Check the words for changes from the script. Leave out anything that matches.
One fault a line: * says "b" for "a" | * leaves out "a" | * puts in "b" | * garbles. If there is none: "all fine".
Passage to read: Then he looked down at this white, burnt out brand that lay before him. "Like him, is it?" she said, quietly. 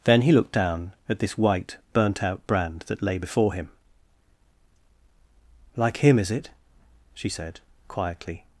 all fine